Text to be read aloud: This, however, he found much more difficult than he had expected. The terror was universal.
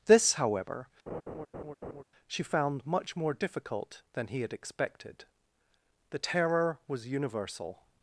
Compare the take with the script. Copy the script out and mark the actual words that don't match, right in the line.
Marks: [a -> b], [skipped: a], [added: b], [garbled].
This, however, [he -> she] found much more difficult than he had expected. The terror was universal.